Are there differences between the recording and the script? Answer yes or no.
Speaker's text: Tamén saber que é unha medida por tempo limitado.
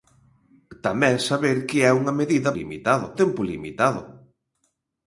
yes